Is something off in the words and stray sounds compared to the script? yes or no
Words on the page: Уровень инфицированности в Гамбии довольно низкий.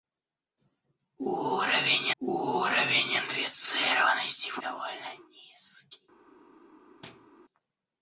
yes